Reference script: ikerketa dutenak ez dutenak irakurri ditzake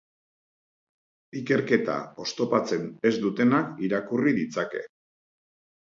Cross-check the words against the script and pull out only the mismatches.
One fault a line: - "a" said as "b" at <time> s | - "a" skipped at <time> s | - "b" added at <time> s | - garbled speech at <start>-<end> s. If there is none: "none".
- "dutenak" said as "oztopatzen" at 2.2 s